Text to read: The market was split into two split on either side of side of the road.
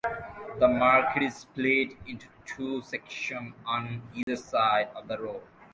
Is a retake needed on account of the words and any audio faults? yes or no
yes